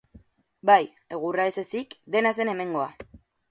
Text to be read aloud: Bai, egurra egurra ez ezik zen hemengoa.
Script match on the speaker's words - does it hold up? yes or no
no